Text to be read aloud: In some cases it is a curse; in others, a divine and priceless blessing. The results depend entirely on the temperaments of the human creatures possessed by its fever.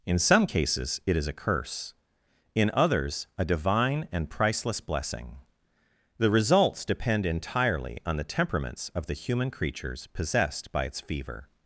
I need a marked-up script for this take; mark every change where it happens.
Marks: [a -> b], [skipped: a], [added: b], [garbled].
In some cases it is a curse; in others, a divine and priceless blessing. The results depend entirely on the temperaments of the human creatures possessed by its fever.